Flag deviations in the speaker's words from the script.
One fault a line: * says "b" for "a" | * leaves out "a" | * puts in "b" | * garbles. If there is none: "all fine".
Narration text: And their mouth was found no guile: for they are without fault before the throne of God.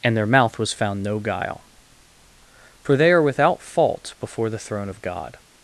all fine